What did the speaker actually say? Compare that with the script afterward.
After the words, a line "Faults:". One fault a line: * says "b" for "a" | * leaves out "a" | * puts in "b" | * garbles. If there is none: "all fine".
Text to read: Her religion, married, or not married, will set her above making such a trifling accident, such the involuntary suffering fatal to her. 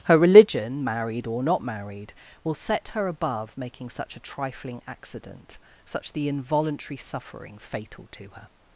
Her religion, married, or not married, will set her above making such a trifling accident, such the involuntary suffering fatal to her.
Faults:
all fine